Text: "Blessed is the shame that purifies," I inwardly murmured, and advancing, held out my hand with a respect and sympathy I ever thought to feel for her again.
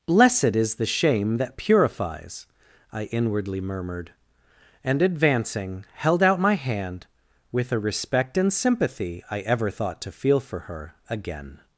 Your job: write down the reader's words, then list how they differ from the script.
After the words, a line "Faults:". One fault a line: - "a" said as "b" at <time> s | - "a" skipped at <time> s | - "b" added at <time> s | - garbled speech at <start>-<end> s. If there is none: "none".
"Blessed is the shame that purifies," I inwardly murmured, and advancing, held out my hand with a respect and sympathy I ever thought to feel for her again.
Faults:
none